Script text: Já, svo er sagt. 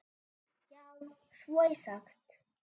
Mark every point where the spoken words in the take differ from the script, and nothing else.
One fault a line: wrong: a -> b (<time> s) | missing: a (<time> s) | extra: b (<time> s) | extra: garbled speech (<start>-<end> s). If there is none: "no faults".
no faults